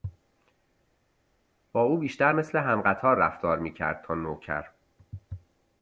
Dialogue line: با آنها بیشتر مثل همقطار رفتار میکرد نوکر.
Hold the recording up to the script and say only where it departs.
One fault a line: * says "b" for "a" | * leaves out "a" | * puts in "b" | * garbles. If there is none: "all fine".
* says "او" for "آنها"
* puts in "تا"